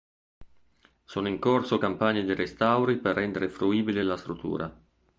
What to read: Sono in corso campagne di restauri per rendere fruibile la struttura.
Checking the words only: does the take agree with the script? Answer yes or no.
yes